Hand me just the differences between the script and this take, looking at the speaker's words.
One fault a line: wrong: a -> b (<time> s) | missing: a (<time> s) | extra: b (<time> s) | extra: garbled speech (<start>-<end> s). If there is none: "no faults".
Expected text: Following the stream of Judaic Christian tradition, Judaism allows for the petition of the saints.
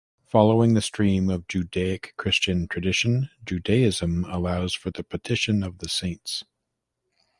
no faults